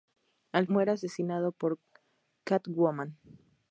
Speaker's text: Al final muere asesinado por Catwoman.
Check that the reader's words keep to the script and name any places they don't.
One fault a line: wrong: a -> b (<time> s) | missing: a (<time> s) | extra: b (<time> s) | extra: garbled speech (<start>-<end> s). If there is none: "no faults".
missing: final (0.7 s)